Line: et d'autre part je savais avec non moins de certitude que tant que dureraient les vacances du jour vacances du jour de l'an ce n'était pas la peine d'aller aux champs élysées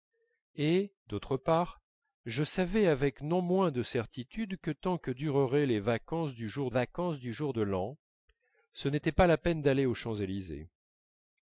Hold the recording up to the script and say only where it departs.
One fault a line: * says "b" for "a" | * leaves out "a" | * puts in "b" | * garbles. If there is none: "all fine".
all fine